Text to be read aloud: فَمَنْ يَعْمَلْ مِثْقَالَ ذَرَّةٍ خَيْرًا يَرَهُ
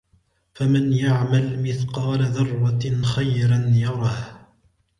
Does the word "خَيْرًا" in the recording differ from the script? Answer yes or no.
no